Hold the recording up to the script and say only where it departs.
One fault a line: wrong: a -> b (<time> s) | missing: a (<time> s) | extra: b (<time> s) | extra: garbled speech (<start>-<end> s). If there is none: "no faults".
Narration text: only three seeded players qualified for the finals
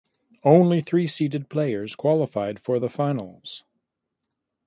no faults